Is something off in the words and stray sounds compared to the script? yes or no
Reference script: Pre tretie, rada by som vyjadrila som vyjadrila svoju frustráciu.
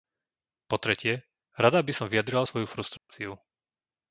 yes